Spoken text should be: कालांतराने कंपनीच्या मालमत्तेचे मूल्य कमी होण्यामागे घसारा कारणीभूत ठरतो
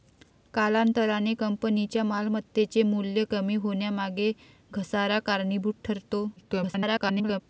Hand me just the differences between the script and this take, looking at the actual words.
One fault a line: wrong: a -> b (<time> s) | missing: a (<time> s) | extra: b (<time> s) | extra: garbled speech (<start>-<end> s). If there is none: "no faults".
extra: garbled speech (6.4-7.4 s)